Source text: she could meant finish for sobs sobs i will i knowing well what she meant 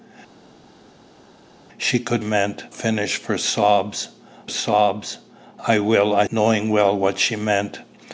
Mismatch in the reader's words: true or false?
false